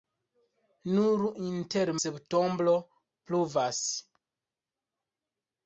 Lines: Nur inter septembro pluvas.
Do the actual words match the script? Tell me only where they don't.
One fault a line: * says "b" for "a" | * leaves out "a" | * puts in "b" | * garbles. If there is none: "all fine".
all fine